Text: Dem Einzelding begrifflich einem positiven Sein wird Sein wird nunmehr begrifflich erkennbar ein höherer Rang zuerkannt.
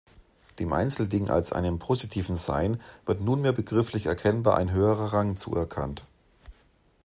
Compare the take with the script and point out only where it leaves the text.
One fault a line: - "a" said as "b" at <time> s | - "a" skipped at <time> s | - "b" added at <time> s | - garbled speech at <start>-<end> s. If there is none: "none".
- "begrifflich" said as "als" at 1.3 s
- "Sein wird" skipped at 3.2 s